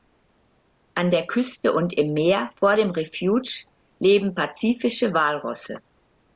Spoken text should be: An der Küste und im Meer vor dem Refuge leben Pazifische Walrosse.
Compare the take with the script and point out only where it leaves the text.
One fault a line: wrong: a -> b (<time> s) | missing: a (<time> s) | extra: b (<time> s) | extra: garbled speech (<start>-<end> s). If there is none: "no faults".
no faults